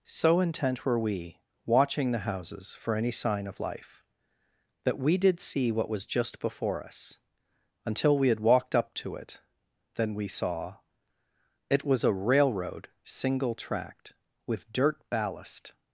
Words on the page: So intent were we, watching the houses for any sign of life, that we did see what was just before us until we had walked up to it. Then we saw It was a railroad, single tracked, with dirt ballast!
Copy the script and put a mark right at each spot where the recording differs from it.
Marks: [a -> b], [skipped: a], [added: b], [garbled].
So intent were we, watching the houses for any sign of life, that we did see what was just before us until we had walked up to it. Then we saw It was a railroad, single tracked, with dirt ballast!